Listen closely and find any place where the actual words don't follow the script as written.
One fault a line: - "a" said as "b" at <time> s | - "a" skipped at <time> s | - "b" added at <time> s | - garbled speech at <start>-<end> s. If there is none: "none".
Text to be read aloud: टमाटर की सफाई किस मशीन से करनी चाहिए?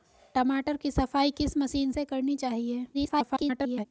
- garbled speech at 2.9-3.9 s